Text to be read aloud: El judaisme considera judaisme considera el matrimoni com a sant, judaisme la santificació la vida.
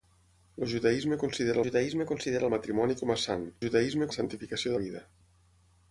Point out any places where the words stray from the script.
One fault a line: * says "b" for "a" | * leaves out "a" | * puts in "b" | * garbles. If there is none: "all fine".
all fine